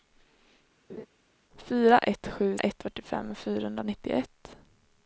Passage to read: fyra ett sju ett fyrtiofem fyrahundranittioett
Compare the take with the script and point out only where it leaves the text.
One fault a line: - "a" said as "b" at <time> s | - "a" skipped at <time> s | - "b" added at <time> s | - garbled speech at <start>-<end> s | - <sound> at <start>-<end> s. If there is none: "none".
- laugh at 0.9-1.1 s